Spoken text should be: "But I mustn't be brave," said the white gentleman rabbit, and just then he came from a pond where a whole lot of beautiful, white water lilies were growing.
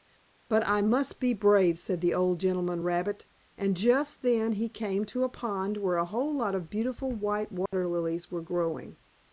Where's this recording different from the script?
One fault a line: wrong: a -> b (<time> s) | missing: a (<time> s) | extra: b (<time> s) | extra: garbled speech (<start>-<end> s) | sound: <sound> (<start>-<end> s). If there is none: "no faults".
wrong: mustn't -> must (0.8 s)
wrong: white -> old (2.1 s)
wrong: from -> to (5.0 s)
sound: dropout (7.7-7.7 s)